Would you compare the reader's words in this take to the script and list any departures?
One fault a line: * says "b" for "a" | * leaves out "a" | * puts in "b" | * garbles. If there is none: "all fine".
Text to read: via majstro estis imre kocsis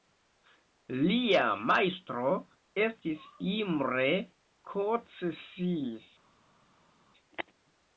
* says "lia" for "via"